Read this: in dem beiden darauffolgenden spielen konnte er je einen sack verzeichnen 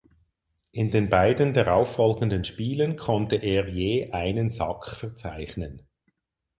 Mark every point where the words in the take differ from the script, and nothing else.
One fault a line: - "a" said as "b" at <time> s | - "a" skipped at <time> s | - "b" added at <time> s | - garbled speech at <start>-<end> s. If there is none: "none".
- "dem" said as "den" at 0.9 s